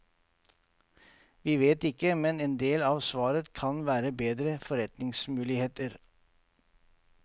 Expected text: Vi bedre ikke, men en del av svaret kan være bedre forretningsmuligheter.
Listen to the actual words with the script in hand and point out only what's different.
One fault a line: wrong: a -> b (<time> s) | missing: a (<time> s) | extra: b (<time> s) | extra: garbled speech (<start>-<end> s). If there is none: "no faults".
wrong: bedre -> vet (1.6 s)